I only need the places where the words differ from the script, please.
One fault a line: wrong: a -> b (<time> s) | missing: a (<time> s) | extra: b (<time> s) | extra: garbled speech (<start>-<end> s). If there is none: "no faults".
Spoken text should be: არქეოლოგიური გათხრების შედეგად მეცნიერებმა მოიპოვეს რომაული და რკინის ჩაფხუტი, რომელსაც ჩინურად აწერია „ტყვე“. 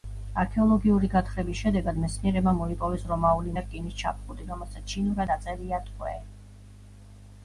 no faults